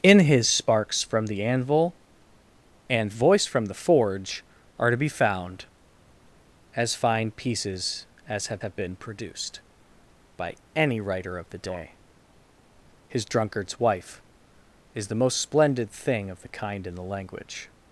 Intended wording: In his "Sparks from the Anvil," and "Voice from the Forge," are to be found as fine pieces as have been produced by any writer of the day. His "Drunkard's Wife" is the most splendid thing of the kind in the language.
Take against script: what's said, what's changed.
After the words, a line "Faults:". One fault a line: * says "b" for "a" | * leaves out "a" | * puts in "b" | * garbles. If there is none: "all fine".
In his "Sparks from the Anvil," and "Voice from the Forge," are to be found as fine pieces as have have been produced by any writer of the day. His "Drunkard's Wife" is the most splendid thing of the kind in the language.
Faults:
* puts in "have"